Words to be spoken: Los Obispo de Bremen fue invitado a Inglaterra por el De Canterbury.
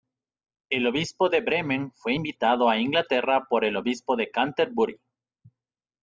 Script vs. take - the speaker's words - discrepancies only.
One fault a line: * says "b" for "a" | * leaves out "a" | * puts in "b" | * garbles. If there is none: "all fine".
* says "El" for "Los"
* puts in "Obispo"